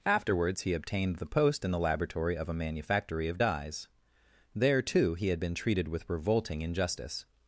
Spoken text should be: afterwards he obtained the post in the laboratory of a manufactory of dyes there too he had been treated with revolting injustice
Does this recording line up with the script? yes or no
yes